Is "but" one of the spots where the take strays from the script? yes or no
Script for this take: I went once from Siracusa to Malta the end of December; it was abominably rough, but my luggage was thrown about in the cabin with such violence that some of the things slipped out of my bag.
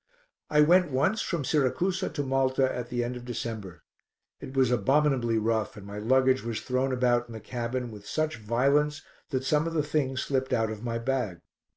yes